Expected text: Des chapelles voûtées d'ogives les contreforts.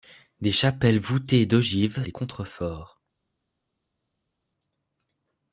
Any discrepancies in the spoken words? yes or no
no